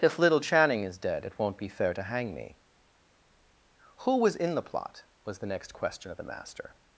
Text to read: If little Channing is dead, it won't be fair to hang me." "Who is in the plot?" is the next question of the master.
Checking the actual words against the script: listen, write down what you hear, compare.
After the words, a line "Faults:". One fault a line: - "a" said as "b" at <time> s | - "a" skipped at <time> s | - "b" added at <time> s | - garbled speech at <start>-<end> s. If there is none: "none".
If little Channing is dead, it won't be fair to hang me." "Who was in the plot?" was the next question of the master.
Faults:
- "is" said as "was" at 4.2 s
- "is" said as "was" at 5.2 s